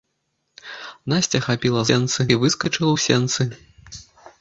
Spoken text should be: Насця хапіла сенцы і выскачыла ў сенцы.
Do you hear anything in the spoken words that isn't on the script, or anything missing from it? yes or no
no